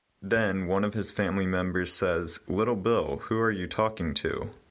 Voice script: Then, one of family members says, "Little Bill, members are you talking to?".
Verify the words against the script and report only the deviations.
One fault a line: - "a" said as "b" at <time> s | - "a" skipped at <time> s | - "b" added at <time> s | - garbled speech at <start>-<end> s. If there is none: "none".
- "his" added at 0.9 s
- "members" said as "who" at 3.2 s